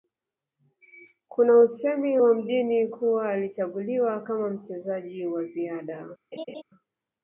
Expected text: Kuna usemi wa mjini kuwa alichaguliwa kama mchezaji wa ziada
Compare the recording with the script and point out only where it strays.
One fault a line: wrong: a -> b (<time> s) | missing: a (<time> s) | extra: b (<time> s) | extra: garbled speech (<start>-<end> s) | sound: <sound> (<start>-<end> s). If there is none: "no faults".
sound: laugh (6.3-6.6 s)